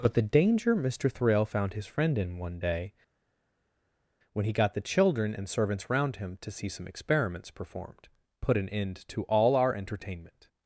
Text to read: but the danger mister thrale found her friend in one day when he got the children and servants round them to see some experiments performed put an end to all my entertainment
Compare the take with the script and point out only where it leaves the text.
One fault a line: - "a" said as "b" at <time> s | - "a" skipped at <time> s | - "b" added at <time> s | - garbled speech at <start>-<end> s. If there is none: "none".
- "her" said as "his" at 1.7 s
- "them" said as "him" at 6.2 s
- "my" said as "our" at 9.5 s